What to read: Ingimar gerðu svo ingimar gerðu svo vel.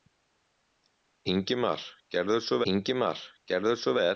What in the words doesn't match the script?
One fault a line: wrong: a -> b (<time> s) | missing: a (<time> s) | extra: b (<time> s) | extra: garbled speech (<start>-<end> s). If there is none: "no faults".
no faults